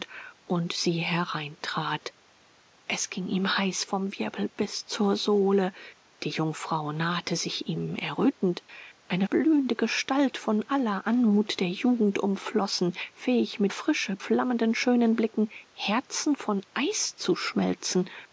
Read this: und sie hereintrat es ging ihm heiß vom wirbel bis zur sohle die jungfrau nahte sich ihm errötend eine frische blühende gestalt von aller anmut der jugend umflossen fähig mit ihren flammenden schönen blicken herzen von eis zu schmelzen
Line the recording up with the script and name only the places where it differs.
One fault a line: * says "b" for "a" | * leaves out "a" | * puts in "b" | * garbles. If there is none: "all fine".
* leaves out "frische"
* says "frische" for "ihren"